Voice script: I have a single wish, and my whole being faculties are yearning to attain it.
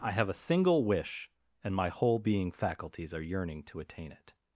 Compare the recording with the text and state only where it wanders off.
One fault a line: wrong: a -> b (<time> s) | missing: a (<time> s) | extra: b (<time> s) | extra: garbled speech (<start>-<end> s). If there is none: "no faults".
no faults